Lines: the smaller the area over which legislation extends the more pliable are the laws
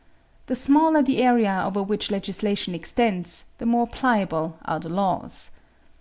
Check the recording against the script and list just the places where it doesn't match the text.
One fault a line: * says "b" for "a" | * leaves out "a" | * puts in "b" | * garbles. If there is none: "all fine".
all fine